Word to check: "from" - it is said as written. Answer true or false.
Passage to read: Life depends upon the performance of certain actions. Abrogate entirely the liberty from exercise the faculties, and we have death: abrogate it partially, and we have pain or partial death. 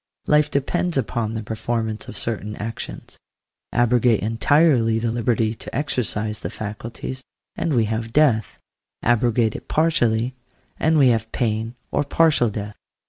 false